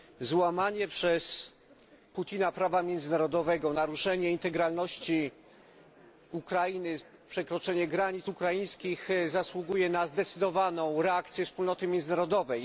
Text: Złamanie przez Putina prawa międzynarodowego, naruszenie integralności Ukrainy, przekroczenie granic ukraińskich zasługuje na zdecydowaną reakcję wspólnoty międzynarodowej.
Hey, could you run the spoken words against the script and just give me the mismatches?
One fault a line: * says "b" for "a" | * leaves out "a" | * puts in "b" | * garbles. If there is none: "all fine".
all fine